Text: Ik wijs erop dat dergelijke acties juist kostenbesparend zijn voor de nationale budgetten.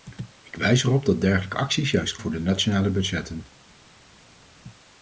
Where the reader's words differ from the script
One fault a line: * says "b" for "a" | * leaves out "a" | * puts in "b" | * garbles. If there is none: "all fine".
* leaves out "kostenbesparend zijn"